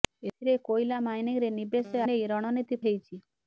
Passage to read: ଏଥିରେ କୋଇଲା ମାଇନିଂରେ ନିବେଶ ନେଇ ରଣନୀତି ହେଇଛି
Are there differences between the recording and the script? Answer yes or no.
no